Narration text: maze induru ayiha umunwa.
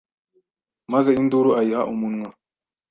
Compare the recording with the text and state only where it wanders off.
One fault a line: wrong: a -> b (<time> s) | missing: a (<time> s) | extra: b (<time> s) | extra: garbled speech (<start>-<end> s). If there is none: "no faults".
no faults